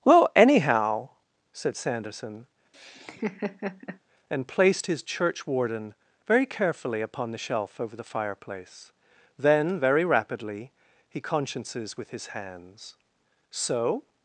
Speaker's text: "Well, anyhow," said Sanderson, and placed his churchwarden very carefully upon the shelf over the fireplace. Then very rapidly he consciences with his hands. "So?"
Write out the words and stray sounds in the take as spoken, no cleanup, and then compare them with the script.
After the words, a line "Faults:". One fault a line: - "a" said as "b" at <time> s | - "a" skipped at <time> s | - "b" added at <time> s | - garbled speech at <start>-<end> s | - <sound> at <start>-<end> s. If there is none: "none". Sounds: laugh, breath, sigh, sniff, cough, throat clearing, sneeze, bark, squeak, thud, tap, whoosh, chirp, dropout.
"Well, anyhow," said Sanderson, and placed his churchwarden very carefully upon the shelf over the fireplace. Then very rapidly he consciences with his hands. "So?"
Faults:
- laugh at 2.7-4.0 s